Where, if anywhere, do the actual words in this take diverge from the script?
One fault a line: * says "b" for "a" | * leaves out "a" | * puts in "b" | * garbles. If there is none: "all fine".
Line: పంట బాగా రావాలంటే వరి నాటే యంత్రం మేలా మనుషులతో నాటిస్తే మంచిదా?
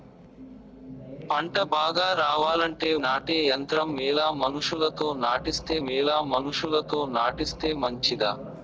* leaves out "వరి"
* puts in "మేలా మనుషులతో నాటిస్తే"